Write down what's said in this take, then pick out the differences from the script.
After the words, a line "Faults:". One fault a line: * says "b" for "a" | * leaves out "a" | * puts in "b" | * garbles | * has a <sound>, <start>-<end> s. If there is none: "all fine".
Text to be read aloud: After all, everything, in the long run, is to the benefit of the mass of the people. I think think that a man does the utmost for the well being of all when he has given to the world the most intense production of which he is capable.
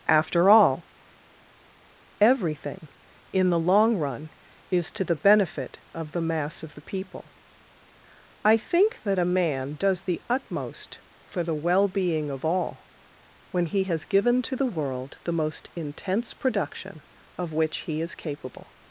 After all, everything, in the long run, is to the benefit of the mass of the people. I think that a man does the utmost for the well being of all when he has given to the world the most intense production of which he is capable.
Faults:
* leaves out "think"